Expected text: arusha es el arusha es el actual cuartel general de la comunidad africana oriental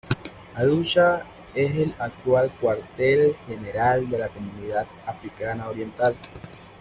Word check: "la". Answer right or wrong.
right